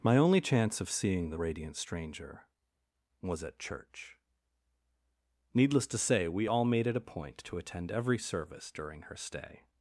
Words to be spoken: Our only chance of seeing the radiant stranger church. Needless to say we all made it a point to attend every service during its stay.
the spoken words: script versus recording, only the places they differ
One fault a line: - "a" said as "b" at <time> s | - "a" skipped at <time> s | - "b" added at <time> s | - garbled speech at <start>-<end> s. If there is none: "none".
- "Our" said as "My" at 0.0 s
- "was at" added at 3.2 s
- "its" said as "her" at 9.0 s